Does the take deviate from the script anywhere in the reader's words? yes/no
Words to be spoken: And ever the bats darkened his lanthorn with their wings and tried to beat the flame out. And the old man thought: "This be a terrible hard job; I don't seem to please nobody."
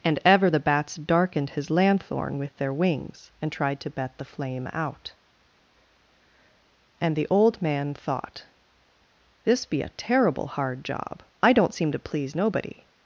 yes